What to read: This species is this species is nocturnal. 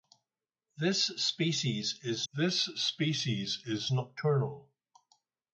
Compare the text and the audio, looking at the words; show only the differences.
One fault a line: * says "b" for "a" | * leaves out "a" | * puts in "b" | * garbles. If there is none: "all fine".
all fine